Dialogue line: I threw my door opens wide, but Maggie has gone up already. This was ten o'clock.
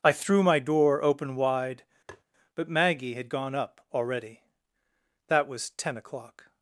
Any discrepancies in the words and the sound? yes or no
yes